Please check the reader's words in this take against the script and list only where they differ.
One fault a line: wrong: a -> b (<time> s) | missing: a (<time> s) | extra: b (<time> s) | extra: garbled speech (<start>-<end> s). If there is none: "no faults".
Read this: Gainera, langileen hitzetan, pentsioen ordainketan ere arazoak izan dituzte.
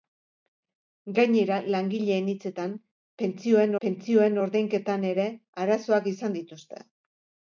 extra: pentsioen (3.9 s)